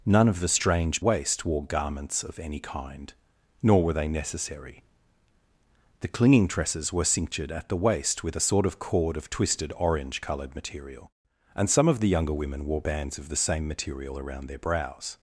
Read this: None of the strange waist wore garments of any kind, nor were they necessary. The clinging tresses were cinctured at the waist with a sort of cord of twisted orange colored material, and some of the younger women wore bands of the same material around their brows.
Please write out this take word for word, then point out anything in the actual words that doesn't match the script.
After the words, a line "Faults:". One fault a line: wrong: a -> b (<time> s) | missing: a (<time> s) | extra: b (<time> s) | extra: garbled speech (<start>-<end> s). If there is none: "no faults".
None of the strange waist wore garments of any kind, nor were they necessary. The clinging tresses were cinctured at the waist with a sort of cord of twisted orange colored material, and some of the younger women wore bands of the same material around their brows.
Faults:
no faults